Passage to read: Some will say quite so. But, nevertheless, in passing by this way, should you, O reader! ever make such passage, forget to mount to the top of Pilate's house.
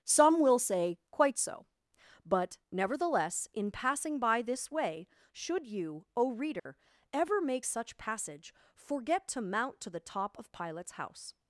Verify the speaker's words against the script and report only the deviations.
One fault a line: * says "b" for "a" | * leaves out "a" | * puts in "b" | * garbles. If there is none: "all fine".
all fine